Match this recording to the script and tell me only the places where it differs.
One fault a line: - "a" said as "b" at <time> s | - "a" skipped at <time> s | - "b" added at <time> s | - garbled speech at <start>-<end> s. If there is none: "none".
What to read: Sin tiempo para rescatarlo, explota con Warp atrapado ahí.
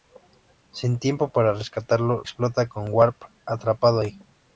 none